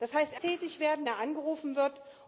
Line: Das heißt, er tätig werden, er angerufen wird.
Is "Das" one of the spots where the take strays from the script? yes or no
no